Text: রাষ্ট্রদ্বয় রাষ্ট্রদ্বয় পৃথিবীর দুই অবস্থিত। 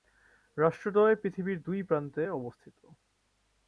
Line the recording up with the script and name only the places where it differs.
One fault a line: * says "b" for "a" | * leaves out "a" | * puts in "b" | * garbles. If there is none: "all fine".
* leaves out "রাষ্ট্রদ্বয়"
* puts in "প্রান্তে"